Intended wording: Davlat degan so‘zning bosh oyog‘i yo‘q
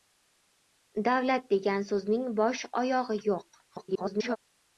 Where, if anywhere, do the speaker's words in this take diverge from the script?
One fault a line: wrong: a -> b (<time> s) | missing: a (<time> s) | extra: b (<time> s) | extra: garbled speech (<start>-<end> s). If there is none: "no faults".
extra: garbled speech (3.7-4.4 s)